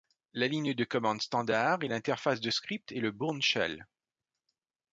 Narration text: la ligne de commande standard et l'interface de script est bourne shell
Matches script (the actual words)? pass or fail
fail